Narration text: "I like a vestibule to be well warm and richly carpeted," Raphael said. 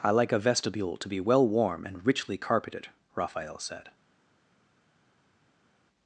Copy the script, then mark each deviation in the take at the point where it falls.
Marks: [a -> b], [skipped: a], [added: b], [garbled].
"I like a vestibule to be well warm and richly carpeted," Raphael said.